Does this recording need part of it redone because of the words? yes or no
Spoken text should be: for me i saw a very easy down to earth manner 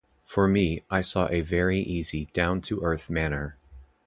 no